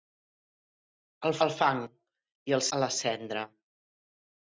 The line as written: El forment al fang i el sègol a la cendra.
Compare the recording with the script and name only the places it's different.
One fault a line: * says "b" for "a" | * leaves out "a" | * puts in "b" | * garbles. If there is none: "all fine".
* leaves out "forment"
* leaves out "sègol"